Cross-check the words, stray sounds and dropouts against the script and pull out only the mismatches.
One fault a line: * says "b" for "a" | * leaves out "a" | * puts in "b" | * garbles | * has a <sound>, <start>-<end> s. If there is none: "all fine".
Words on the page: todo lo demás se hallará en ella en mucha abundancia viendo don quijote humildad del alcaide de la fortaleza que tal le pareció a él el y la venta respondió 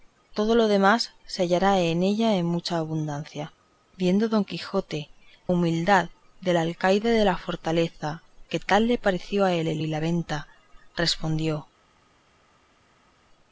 all fine